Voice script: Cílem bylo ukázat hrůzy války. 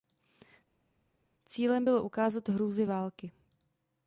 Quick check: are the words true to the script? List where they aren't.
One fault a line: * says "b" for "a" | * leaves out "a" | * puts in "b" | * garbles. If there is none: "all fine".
all fine